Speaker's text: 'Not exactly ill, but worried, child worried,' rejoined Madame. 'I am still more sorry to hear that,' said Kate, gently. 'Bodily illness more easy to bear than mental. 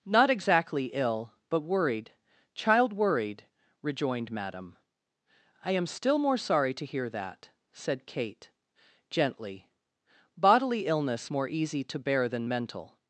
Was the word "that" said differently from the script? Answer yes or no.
no